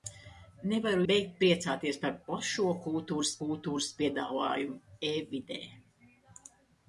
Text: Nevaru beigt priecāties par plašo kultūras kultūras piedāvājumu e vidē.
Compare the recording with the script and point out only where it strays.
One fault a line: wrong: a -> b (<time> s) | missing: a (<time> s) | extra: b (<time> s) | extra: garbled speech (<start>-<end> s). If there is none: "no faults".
no faults